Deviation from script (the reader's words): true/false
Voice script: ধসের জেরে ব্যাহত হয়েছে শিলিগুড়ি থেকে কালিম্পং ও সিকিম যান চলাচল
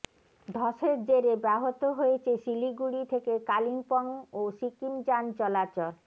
false